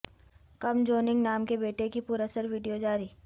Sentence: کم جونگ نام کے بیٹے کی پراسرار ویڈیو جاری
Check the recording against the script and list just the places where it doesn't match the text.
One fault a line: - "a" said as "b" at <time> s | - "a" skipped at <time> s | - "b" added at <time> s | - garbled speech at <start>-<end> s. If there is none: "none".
none